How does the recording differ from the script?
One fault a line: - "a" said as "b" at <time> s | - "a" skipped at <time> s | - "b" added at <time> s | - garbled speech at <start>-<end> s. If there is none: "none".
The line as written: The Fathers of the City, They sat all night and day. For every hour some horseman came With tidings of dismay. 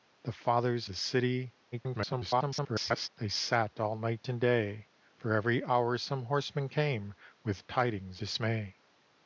- "of" skipped at 0.9 s
- garbled speech at 1.7-3.1 s
- "of" skipped at 8.2 s